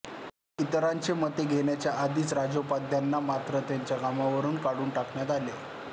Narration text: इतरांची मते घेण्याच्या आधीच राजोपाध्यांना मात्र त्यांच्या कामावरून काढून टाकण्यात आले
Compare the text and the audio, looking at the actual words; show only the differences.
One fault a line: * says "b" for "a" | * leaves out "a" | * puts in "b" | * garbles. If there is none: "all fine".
all fine